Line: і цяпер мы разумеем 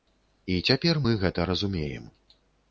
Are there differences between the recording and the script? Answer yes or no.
yes